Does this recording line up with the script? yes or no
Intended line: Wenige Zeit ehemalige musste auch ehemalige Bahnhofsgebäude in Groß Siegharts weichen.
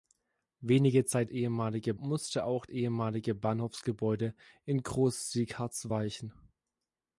yes